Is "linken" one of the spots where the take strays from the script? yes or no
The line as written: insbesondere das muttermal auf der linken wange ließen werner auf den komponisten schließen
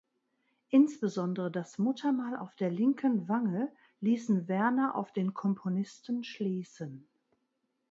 no